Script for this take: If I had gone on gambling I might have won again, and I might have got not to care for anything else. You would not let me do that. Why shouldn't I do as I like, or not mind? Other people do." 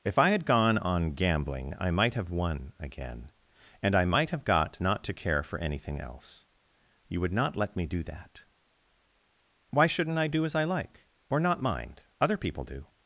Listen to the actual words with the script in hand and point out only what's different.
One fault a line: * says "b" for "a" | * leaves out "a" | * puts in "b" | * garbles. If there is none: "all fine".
all fine